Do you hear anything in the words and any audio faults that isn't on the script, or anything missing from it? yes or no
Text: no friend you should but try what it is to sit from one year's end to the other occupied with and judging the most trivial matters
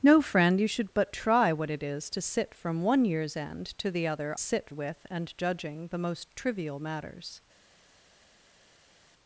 yes